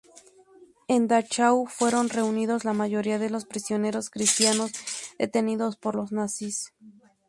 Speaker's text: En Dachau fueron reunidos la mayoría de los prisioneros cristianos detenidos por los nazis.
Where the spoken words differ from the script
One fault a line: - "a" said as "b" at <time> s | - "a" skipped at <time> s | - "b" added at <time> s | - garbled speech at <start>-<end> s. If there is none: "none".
none